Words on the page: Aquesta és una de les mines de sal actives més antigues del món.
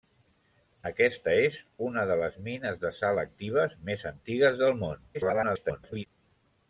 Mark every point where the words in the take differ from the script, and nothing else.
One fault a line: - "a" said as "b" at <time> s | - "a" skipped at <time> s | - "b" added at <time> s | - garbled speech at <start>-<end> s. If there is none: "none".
- garbled speech at 5.1-6.1 s